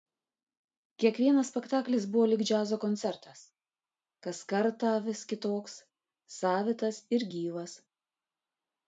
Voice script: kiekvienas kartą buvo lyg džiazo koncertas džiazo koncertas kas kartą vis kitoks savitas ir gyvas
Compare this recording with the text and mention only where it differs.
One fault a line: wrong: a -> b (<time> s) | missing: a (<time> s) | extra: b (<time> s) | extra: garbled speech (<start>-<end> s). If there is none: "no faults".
wrong: kartą -> spektaklis (1.5 s)
missing: džiazo koncertas (3.4 s)